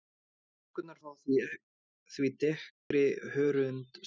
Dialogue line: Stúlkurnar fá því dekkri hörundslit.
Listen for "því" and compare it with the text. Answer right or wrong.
right